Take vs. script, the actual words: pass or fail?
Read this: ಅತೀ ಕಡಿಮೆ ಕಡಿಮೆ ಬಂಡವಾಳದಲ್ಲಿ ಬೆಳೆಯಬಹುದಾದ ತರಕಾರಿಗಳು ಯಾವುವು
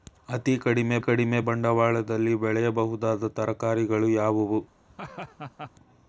pass